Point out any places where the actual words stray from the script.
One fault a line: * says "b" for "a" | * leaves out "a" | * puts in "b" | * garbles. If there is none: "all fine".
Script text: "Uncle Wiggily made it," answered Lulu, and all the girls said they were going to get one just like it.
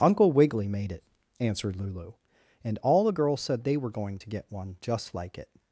all fine